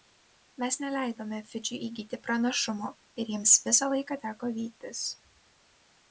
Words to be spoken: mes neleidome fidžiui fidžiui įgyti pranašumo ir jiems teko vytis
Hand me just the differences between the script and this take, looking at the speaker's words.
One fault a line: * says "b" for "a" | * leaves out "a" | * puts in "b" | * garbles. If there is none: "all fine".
* leaves out "fidžiui"
* puts in "visą laiką"